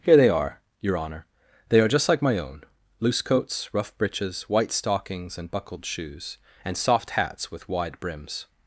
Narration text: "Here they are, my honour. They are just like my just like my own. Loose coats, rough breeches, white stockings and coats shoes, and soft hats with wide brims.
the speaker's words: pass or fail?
fail